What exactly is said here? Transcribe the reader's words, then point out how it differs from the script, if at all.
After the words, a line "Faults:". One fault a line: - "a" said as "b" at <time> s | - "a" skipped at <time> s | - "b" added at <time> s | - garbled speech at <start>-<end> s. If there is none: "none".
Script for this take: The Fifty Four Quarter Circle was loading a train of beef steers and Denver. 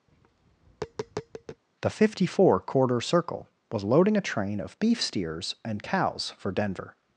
The Fifty Four Quarter Circle was loading a train of beef steers and cows for Denver.
Faults:
- "cows for" added at 5.8 s